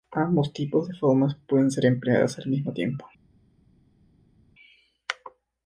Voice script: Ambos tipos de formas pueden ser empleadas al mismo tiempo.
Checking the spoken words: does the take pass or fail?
pass